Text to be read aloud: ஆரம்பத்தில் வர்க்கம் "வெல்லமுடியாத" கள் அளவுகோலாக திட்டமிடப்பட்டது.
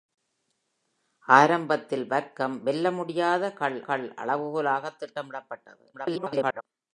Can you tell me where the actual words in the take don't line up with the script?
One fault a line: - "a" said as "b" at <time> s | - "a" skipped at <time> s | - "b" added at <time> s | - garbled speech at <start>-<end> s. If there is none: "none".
- "கள்" added at 3.8 s
- garbled speech at 5.9-6.6 s